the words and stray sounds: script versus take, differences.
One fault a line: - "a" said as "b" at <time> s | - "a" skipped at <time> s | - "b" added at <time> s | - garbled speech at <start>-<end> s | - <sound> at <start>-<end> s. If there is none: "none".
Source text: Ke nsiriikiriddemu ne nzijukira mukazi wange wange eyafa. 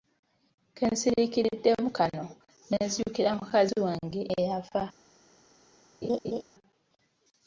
- "kano" added at 2.0 s
- "wange" skipped at 4.2 s
- laugh at 6.0-6.4 s